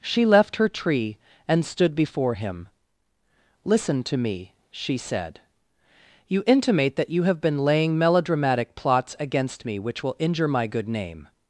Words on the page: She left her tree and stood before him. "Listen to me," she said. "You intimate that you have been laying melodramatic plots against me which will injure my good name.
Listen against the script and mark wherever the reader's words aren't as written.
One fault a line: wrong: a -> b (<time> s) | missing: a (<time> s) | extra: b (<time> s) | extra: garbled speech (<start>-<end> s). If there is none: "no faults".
no faults